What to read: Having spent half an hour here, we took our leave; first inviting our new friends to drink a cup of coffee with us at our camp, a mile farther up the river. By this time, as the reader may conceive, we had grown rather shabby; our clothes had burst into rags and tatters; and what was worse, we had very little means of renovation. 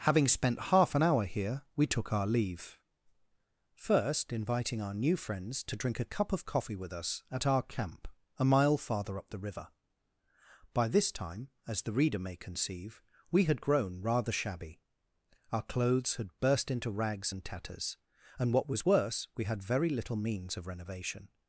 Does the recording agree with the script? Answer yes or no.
yes